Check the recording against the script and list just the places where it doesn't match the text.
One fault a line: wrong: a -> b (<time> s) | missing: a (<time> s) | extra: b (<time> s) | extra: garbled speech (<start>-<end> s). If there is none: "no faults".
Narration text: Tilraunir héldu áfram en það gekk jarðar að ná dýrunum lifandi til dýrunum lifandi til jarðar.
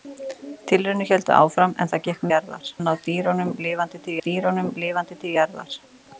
no faults